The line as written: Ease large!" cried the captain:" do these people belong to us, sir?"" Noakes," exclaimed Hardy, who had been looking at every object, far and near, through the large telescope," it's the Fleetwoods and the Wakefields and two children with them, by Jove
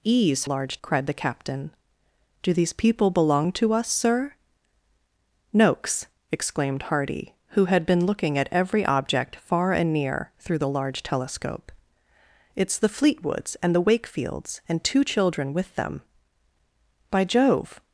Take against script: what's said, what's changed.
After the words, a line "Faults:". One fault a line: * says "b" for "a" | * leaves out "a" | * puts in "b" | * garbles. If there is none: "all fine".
Ease large!" cried the captain:" do these people belong to us, sir?"" Noakes," exclaimed Hardy, who had been looking at every object, far and near, through the large telescope," it's the Fleetwoods and the Wakefields and two children with them, by Jove
Faults:
all fine